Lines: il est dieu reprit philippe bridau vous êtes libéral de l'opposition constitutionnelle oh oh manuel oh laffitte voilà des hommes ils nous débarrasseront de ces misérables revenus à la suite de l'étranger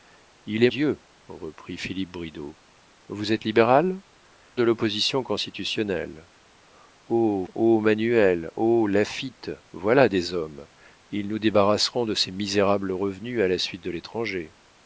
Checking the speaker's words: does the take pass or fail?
pass